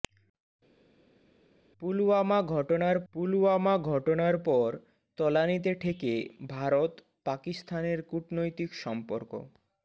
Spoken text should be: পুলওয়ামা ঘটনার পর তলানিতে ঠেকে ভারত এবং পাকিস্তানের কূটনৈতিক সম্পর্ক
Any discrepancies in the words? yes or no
yes